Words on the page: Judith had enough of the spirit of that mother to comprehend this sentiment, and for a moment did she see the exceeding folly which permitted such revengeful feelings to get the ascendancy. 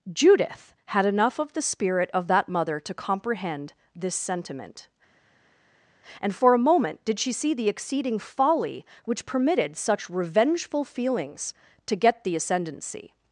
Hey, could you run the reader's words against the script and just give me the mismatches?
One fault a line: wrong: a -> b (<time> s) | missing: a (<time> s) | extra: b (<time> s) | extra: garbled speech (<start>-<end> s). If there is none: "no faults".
no faults